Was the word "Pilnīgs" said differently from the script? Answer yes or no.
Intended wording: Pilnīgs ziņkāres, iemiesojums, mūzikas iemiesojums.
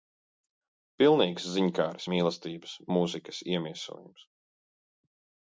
no